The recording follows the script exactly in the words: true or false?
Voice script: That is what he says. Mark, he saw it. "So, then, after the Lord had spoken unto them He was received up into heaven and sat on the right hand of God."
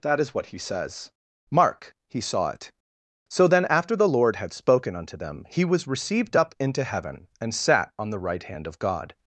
true